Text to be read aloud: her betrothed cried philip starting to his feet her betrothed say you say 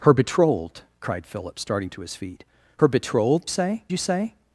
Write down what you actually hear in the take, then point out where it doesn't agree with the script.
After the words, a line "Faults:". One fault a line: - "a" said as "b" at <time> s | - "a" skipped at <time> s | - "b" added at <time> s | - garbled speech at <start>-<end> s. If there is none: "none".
her betrothed cried philip starting to his feet her betrothed say you say
Faults:
none